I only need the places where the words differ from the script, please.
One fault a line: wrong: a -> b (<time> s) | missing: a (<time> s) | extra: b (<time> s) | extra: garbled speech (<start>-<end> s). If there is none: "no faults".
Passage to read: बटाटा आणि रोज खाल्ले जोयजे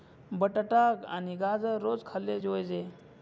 extra: गाजर (1.4 s)